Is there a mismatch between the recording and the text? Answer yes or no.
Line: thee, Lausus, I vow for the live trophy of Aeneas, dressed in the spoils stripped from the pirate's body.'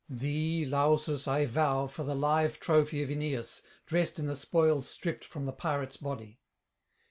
no